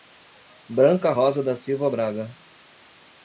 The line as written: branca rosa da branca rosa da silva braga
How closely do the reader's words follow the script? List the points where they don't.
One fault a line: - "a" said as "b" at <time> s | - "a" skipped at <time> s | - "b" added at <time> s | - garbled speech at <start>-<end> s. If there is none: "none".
- "branca rosa da" skipped at 1.6 s